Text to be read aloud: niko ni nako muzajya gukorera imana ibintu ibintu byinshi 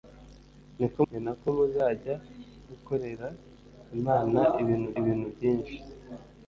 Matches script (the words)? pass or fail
pass